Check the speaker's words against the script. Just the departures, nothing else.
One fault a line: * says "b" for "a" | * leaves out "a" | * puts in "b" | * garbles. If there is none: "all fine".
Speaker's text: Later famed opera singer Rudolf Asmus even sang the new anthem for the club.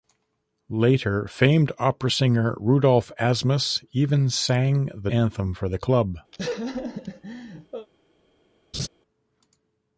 * leaves out "new"